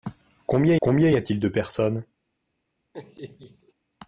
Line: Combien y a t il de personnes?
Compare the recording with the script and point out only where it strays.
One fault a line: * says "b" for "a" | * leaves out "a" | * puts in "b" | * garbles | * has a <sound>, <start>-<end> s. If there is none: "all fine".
* puts in "combien"
* has a laugh, 2.9-3.7 s